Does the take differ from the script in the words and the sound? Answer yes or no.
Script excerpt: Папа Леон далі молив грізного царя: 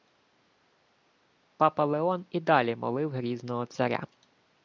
yes